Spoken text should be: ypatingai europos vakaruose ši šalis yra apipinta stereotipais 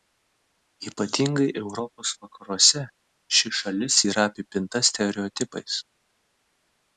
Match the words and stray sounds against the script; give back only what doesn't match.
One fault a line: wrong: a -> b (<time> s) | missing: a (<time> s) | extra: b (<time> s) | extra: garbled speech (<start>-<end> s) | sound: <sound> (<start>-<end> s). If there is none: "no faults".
no faults